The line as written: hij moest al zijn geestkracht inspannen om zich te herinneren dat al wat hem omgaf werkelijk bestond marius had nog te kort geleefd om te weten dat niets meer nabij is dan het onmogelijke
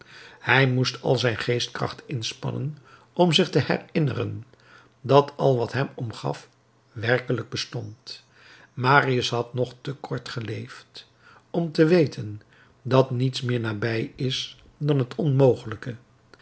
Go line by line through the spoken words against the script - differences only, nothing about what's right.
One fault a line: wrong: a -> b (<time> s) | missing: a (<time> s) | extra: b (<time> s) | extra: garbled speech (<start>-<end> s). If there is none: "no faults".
no faults